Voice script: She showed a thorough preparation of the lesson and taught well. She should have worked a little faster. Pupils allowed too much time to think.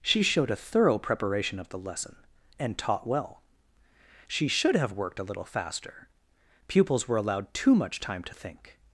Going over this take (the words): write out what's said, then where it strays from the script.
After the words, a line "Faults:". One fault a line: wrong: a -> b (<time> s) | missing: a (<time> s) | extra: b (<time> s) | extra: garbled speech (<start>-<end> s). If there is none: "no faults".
She showed a thorough preparation of the lesson and taught well. She should have worked a little faster. Pupils were allowed too much time to think.
Faults:
extra: were (7.1 s)